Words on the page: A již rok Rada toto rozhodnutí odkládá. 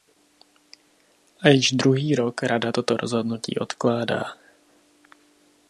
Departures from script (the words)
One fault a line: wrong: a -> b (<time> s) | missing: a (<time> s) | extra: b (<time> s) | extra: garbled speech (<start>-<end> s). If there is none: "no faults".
extra: druhý (1.7 s)